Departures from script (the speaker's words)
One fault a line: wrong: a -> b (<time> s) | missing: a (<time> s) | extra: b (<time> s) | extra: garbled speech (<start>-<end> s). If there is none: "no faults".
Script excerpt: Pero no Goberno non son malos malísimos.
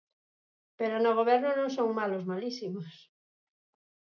no faults